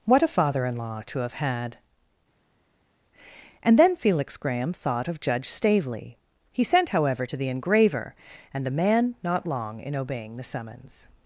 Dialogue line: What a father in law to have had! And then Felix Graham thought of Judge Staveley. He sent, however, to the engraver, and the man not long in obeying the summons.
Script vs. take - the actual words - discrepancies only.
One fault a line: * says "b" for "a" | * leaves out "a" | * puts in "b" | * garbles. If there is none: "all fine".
all fine